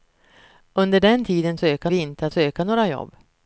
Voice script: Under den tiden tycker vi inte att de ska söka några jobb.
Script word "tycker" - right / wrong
wrong